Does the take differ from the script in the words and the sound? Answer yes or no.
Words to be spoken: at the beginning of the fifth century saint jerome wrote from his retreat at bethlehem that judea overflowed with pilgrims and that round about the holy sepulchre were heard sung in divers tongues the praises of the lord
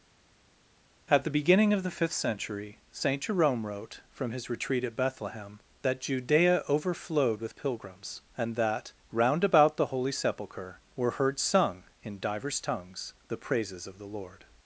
no